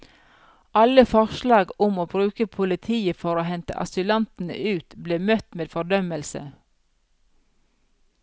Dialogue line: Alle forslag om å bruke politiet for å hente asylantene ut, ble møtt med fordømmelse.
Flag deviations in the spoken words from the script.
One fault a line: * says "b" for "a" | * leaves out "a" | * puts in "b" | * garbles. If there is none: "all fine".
all fine